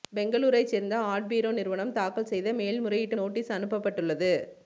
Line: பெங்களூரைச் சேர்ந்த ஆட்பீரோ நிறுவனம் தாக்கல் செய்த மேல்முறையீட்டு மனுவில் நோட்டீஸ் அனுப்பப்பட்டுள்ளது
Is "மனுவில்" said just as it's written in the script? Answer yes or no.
no